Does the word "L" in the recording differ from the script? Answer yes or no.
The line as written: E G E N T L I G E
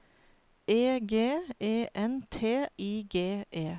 yes